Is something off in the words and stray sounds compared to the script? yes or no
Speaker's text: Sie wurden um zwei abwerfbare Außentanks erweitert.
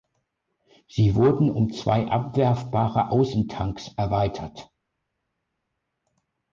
no